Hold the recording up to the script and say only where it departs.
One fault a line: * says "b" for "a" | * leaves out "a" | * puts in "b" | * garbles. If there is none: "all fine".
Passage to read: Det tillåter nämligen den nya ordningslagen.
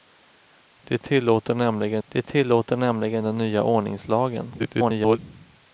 * puts in "det tillåter nämligen"
* garbles